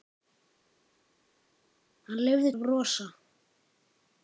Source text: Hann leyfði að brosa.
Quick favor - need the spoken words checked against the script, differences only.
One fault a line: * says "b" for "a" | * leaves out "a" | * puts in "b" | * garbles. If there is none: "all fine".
all fine